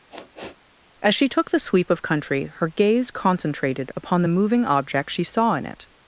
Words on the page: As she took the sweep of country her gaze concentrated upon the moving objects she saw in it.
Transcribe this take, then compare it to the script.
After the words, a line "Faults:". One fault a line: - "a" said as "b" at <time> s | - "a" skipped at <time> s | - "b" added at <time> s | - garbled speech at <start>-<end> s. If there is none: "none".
As she took the sweep of country her gaze concentrated upon the moving objects she saw in it.
Faults:
none